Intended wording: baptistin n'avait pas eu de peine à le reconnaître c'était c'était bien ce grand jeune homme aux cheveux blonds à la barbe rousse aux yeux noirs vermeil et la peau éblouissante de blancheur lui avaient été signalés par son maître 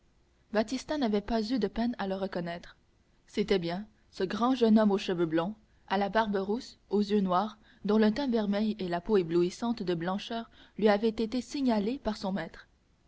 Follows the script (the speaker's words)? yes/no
no